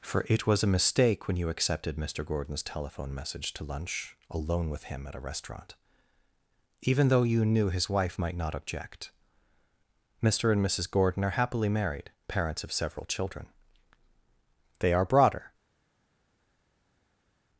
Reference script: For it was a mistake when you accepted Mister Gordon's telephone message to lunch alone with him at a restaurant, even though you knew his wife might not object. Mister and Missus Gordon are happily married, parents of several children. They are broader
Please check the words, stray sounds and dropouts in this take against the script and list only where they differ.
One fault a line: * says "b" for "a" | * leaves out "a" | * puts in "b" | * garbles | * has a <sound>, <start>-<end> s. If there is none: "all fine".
all fine